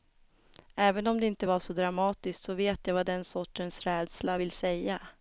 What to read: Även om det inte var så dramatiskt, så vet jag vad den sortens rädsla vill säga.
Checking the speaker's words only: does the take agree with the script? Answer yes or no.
yes